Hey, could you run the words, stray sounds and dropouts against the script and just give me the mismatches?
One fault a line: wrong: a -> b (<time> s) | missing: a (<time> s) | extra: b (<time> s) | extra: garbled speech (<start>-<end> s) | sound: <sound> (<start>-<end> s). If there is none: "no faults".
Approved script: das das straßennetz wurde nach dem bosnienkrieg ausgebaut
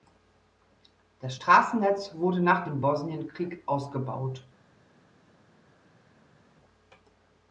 missing: das (1.4 s)